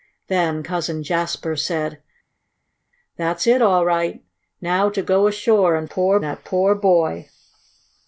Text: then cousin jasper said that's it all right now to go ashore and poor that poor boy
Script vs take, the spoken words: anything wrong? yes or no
no